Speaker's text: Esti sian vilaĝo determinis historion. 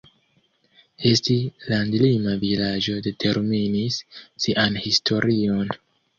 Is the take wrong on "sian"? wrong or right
wrong